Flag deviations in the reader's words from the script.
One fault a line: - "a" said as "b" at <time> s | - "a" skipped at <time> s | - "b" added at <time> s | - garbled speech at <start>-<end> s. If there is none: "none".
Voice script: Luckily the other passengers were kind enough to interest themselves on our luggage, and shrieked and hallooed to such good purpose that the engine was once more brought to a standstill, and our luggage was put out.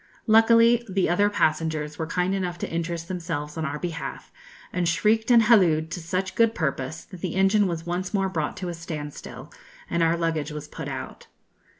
- "luggage" said as "behalf" at 3.8 s